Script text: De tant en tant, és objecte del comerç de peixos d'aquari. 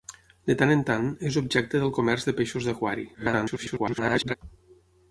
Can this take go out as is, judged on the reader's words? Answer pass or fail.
fail